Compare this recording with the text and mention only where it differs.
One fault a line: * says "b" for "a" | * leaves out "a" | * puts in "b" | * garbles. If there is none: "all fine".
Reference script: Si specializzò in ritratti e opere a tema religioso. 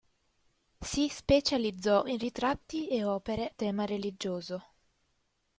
* leaves out "a"